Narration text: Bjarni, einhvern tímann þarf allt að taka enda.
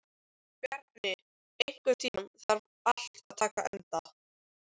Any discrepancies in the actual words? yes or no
no